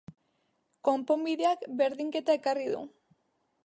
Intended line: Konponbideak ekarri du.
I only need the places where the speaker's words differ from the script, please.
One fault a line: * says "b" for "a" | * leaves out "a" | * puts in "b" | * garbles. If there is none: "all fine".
* puts in "berdinketa"